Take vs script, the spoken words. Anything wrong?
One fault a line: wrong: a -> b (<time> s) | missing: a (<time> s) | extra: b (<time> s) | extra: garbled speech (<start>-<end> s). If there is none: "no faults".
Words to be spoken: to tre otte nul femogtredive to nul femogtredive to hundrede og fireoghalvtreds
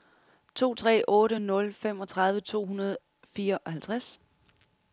missing: nul femogtredive to (2.7 s)